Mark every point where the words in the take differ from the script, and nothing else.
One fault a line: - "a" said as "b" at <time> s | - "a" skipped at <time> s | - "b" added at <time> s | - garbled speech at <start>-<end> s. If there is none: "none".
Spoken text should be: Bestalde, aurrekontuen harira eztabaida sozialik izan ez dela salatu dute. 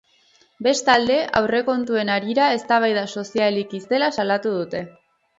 - "izan" skipped at 3.8 s